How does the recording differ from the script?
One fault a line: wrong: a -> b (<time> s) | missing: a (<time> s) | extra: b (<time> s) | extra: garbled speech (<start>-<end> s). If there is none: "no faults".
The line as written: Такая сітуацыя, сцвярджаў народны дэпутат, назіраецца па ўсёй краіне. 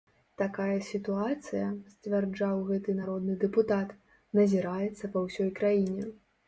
extra: гэты (2.7 s)